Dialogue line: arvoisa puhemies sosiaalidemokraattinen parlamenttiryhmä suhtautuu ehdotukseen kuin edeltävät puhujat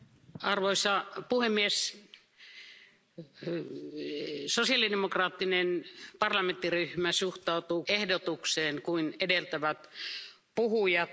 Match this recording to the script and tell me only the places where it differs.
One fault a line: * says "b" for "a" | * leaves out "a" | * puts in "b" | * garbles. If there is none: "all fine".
all fine